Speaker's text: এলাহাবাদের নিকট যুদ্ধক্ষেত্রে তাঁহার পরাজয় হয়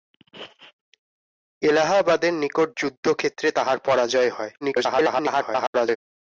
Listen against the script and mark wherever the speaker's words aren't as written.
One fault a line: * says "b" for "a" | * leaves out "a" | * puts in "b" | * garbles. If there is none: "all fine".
* garbles